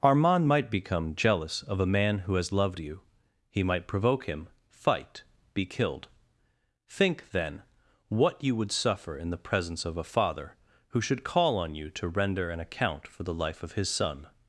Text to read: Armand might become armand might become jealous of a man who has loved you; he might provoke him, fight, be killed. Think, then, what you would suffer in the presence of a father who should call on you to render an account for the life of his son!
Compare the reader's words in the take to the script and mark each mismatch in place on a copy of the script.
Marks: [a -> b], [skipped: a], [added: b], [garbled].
Armand might become [skipped: armand might become] jealous of a man who has loved you; he might provoke him, fight, be killed. Think, then, what you would suffer in the presence of a father who should call on you to render an account for the life of his son!